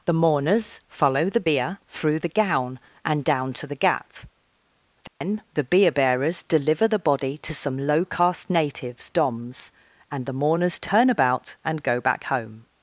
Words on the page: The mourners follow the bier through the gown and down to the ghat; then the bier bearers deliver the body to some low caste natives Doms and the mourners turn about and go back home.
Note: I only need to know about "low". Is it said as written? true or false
true